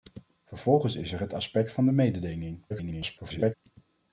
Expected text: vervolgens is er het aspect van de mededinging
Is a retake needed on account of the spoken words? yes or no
yes